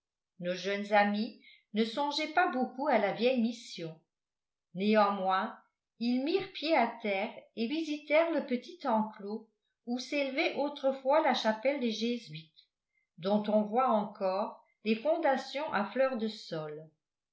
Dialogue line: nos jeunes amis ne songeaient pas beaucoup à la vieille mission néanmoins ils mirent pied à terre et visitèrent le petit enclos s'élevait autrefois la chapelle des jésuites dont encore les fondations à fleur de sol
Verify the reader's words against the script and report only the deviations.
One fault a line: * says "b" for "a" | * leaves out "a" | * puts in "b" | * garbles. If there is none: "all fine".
* puts in "où"
* puts in "on voit"